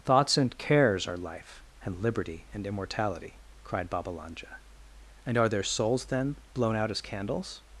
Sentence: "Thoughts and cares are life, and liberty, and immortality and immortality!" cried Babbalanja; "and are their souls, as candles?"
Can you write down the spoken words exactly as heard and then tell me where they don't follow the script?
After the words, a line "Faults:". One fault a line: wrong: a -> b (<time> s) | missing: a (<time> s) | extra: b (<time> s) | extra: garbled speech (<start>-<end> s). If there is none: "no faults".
"Thoughts and cares are life, and liberty, and immortality!" cried Babbalanja; "and are their souls, then, blown out as candles?"
Faults:
missing: and immortality (3.4 s)
extra: then blown out (6.0 s)